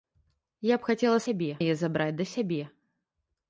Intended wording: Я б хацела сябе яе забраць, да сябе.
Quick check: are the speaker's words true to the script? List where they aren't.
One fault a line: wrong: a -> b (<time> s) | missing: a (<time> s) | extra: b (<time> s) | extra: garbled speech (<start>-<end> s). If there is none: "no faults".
no faults